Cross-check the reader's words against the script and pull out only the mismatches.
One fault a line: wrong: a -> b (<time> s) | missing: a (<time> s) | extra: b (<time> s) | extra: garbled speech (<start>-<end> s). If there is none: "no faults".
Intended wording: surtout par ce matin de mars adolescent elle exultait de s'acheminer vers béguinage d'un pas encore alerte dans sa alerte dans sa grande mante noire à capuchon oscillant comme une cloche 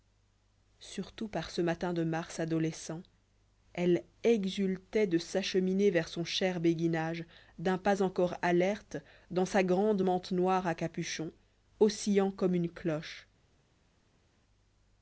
extra: son cher (6.1 s)
missing: alerte dans sa (9.6 s)